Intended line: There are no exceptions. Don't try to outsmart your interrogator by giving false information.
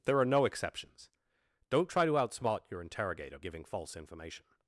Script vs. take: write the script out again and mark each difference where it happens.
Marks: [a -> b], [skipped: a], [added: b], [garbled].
There are no exceptions. Don't try to outsmart your interrogator [skipped: by] giving false information.